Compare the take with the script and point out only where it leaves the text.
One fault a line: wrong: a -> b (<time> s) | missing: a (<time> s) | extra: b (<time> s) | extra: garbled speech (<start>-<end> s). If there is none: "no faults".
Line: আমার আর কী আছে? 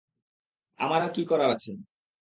extra: করার (1.2 s)